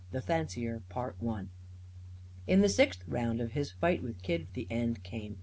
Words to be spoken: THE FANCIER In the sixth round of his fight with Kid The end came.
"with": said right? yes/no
yes